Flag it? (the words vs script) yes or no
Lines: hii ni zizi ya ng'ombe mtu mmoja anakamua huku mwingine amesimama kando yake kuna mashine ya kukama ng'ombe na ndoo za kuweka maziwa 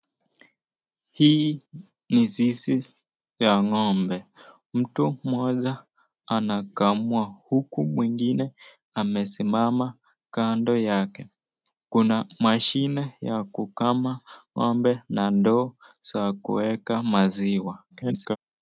yes